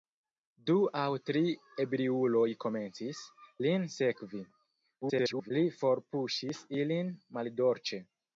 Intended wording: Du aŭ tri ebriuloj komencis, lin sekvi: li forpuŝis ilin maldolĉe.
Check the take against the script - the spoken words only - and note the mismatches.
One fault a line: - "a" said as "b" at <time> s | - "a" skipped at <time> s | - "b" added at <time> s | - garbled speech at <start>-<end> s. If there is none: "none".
- garbled speech at 5.0-5.5 s